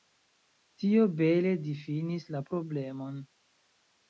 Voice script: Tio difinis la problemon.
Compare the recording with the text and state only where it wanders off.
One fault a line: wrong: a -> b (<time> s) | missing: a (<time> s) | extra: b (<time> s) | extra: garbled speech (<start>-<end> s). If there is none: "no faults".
extra: bele (1.2 s)